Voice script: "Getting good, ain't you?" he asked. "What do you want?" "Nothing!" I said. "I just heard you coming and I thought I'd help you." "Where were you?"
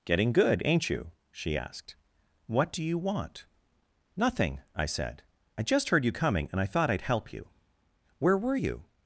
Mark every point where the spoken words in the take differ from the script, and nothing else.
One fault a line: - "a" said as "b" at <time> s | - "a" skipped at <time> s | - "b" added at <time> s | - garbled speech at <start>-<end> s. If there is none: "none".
- "he" said as "she" at 1.3 s